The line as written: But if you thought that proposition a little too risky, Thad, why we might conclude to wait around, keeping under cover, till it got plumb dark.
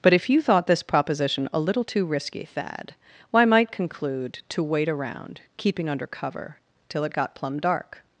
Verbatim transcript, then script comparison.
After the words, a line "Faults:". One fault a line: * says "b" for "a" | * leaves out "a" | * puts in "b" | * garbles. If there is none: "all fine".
But if you thought this proposition a little too risky, Thad, why might conclude to wait around, keeping under cover, till it got plumb dark.
Faults:
* says "this" for "that"
* leaves out "we"